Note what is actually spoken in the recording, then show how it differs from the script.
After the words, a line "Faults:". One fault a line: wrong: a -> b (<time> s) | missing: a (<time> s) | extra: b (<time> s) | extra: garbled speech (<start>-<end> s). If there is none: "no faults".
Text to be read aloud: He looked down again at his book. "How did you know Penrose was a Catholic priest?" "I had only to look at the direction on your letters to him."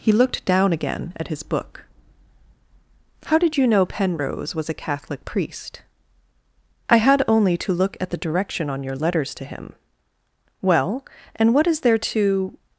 He looked down again at his book. "How did you know Penrose was a Catholic priest?" "I had only to look at the direction on your letters to him." "Well, and what is there to
Faults:
extra: Well and what is there to (10.6 s)